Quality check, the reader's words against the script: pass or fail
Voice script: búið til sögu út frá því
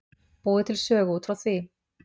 pass